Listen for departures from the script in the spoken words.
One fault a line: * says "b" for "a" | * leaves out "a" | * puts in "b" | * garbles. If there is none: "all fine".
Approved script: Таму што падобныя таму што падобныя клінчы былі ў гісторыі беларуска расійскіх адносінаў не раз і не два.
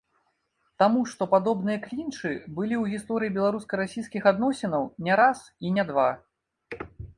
* leaves out "таму што падобныя"